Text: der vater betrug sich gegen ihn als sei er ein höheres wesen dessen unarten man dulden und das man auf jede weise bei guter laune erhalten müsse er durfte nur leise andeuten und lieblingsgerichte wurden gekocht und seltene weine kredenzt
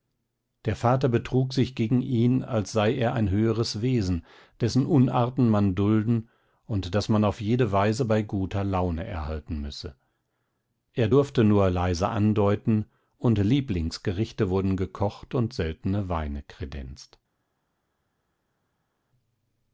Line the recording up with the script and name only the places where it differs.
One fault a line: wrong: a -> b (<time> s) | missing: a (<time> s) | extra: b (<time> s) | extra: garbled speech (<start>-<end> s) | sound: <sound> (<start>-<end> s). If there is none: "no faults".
no faults